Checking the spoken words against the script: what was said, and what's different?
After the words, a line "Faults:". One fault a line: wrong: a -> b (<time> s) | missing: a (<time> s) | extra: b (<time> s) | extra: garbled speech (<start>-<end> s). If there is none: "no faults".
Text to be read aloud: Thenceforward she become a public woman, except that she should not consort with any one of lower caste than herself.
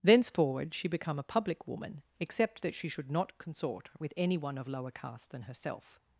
Thenceforward she become a public woman, except that she should not consort with any one of lower caste than herself.
Faults:
no faults